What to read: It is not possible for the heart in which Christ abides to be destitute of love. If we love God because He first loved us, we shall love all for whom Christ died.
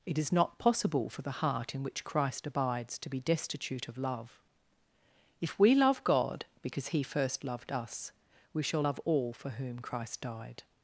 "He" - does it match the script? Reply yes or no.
yes